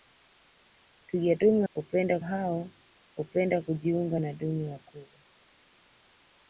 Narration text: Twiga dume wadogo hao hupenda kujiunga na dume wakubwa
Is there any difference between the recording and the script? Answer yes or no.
yes